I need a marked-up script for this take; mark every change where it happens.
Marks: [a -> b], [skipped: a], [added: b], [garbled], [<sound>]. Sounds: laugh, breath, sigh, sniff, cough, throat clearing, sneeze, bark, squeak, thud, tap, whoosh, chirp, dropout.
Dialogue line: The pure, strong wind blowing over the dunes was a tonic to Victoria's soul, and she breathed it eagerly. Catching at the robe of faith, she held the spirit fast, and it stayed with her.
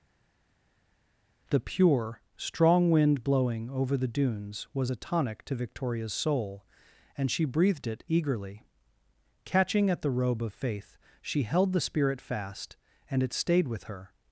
The pure, strong wind blowing over the dunes was a tonic to Victoria's soul, and she breathed it eagerly. Catching at the robe of faith, she held the spirit fast, and it stayed with her.